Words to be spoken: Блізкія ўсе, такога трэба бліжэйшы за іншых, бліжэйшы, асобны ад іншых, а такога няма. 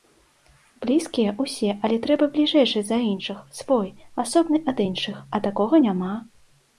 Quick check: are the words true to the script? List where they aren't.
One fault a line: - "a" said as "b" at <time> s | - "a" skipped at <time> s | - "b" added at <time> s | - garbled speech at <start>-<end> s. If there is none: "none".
- "такога" said as "але" at 1.9 s
- "бліжэйшы" said as "свой" at 3.6 s